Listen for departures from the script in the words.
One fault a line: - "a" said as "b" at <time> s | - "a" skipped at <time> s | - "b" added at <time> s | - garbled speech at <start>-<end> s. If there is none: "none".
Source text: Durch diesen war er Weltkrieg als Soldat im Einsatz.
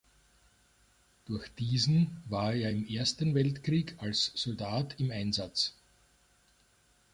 - "im Ersten" added at 2.7 s